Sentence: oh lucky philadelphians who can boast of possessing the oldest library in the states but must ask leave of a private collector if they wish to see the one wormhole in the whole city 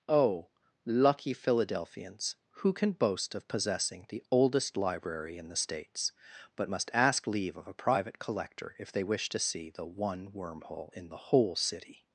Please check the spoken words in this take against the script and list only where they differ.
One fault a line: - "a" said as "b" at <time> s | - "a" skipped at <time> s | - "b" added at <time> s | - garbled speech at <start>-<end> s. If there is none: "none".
none